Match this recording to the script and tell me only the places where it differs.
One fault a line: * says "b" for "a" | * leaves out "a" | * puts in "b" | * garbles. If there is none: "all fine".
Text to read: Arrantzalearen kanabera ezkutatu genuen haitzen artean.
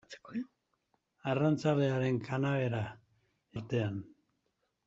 * leaves out "ezkutatu genuen haitzen"